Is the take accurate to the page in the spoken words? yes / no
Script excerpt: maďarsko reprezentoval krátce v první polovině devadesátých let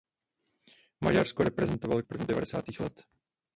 no